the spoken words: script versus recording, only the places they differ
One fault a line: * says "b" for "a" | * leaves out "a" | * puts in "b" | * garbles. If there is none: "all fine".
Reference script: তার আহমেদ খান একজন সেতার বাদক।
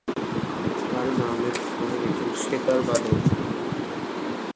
all fine